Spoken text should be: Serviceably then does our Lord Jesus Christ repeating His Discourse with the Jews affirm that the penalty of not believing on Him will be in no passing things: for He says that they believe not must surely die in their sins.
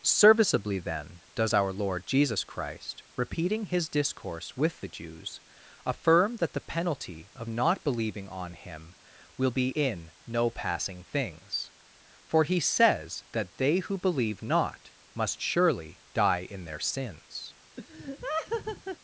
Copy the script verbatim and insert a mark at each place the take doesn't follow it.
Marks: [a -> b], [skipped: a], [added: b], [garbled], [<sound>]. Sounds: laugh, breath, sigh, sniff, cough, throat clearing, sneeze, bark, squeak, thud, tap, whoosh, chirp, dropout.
Serviceably then does our Lord Jesus Christ repeating His Discourse with the Jews affirm that the penalty of not believing on Him will be in no passing things: for He says that they [added: who] believe not must surely die in their sins. [laugh]